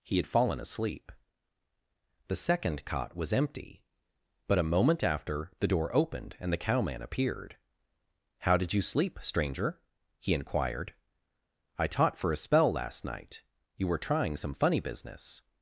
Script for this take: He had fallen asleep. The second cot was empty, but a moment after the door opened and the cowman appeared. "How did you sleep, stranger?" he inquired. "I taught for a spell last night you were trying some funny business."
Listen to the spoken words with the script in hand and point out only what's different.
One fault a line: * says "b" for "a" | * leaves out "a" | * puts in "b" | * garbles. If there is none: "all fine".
all fine